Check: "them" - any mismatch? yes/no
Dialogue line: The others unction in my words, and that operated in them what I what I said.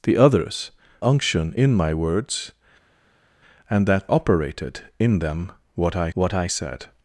no